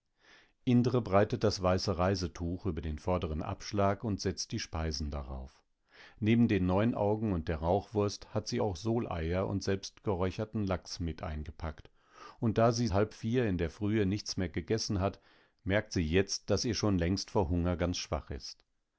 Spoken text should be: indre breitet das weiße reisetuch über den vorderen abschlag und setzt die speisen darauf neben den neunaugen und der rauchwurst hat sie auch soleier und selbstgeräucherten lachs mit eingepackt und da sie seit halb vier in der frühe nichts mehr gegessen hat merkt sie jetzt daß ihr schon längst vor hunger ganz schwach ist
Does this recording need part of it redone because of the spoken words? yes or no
yes